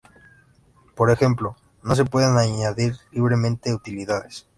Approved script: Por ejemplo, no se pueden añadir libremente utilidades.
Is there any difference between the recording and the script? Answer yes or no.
no